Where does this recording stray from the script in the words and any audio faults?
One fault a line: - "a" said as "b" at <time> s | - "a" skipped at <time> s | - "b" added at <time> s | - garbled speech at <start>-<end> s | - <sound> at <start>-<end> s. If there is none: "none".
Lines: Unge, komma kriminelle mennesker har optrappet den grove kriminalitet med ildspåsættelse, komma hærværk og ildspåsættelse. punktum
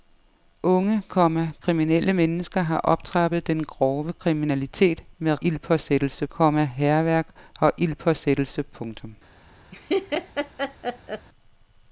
- laugh at 9.7-11.3 s